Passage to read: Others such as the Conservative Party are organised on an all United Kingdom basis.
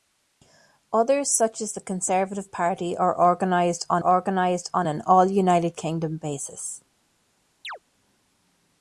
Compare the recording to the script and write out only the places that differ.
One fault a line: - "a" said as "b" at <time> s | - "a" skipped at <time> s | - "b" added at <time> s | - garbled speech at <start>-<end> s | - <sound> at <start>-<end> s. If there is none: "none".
- "organised on" added at 4.0 s
- chirp at 7.6-7.8 s